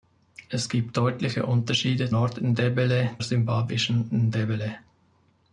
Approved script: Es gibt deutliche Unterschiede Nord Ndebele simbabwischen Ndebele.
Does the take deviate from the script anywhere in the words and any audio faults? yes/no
no